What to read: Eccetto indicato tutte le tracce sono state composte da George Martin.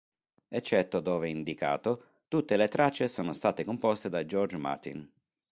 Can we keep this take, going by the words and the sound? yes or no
no